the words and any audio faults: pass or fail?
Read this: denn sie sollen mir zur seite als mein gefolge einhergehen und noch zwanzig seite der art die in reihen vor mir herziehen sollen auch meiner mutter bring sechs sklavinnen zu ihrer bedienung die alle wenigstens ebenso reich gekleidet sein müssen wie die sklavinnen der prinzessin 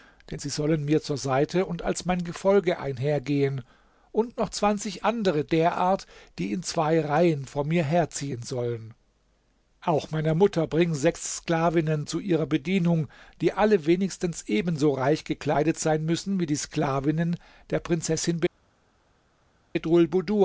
fail